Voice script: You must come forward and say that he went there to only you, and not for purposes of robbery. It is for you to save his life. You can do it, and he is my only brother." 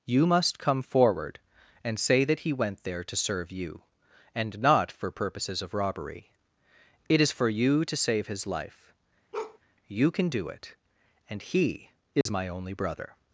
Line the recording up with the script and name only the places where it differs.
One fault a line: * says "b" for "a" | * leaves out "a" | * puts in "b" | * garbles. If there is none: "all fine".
* says "serve" for "only"